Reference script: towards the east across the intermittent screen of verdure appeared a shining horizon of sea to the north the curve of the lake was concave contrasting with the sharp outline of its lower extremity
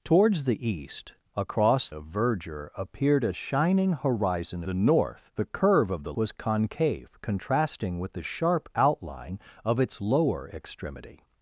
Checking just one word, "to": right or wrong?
wrong